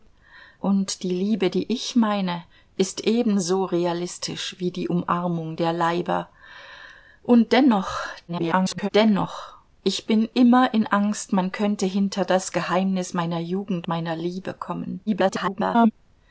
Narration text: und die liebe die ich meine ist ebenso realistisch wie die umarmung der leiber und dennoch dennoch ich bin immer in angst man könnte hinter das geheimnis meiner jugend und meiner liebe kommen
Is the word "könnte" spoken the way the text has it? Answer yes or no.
yes